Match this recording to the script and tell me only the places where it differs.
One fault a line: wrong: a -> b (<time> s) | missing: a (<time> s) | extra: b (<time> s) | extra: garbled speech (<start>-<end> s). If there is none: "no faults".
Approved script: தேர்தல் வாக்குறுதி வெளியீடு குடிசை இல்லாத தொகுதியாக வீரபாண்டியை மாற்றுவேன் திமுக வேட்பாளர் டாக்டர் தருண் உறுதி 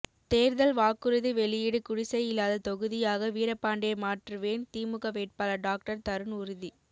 no faults